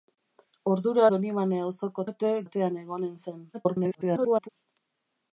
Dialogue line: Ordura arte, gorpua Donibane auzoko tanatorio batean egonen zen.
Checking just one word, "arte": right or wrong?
wrong